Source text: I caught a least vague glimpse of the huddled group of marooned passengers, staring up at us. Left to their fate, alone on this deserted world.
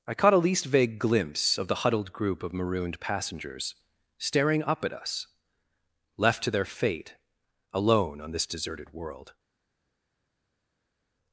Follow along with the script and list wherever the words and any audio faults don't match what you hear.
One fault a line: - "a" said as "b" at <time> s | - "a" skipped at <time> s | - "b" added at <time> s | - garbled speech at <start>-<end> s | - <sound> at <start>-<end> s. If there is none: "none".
none